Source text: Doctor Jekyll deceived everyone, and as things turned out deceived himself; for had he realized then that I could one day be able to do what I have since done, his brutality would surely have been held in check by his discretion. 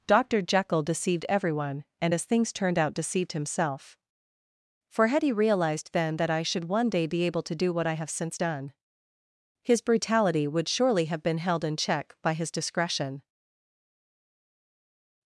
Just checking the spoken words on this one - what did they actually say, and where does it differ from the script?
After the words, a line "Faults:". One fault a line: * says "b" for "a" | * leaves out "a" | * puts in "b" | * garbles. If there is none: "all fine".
Doctor Jekyll deceived everyone, and as things turned out deceived himself; for had he realized then that I should one day be able to do what I have since done, his brutality would surely have been held in check by his discretion.
Faults:
* says "should" for "could"